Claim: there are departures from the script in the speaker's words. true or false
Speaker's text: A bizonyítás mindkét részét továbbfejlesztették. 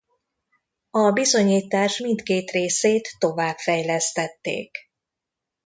false